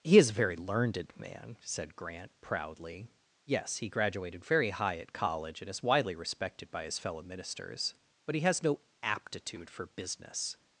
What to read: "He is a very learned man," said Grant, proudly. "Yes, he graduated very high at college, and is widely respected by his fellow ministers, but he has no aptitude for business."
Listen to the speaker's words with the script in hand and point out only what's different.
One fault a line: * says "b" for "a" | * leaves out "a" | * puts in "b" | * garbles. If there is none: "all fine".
all fine